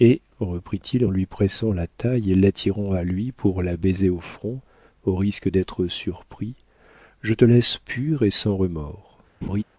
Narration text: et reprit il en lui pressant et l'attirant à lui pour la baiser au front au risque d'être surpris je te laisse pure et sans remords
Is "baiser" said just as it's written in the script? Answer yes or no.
yes